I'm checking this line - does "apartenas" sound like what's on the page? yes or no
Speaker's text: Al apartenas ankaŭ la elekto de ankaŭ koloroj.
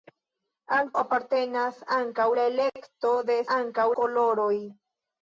yes